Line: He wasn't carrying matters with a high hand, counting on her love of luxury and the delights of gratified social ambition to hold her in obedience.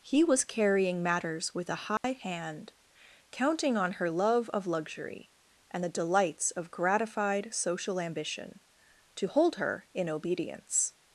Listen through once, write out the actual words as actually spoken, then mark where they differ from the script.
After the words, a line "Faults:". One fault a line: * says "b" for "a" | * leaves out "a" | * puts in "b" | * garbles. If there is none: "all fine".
He was carrying matters with a high hand, counting on her love of luxury and the delights of gratified social ambition to hold her in obedience.
Faults:
* says "was" for "wasn't"